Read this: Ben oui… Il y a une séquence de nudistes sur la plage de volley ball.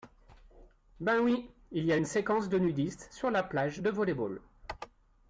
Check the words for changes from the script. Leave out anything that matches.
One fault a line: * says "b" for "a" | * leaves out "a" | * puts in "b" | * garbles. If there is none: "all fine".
all fine